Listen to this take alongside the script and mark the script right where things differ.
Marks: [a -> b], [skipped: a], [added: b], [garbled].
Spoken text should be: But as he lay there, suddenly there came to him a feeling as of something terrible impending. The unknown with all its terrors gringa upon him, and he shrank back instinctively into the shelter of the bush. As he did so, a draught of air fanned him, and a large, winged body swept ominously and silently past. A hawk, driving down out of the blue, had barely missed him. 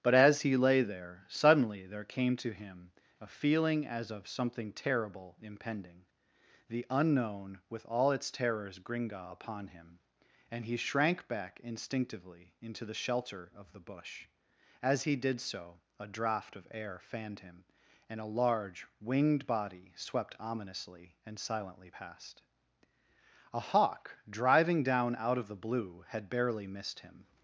But as he lay there, suddenly there came to him a feeling as of something terrible impending. The unknown with all its terrors gringa upon him, and he shrank back instinctively into the shelter of the bush. As he did so, a draught of air fanned him, and a large, winged body swept ominously and silently past. A hawk, driving down out of the blue, had barely missed him.